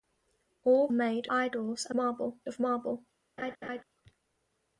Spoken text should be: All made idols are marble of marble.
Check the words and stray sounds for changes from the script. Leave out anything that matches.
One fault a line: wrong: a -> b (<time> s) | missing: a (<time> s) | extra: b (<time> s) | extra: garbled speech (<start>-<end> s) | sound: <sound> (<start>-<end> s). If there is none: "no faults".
sound: laugh (3.4-3.8 s)